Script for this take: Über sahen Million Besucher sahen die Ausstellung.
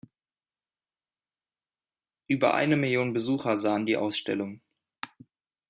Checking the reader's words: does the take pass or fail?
fail